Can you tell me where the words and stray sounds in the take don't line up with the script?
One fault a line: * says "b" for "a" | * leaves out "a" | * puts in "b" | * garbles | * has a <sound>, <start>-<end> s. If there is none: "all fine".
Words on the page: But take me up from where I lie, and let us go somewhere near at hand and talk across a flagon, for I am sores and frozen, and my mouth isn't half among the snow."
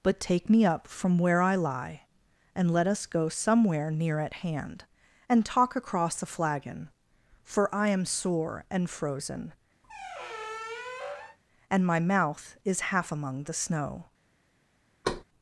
* says "sore" for "sores"
* has a squeak, 9.8-11.4 s
* says "is" for "isn't"
* has a thud, 15.0-15.2 s